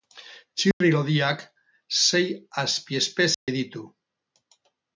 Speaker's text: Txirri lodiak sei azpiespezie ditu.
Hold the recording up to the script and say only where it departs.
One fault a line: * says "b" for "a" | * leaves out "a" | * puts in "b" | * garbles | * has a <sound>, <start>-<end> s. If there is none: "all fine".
* has a dropout, 0.7-0.8 s
* has a dropout, 3.3-3.5 s